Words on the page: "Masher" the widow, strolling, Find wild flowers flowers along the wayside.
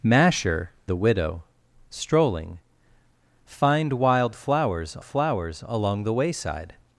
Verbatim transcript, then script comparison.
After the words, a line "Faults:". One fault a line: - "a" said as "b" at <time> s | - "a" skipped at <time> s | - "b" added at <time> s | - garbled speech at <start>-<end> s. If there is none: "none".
"Masher" the widow, strolling, Find wild flowers flowers along the wayside.
Faults:
none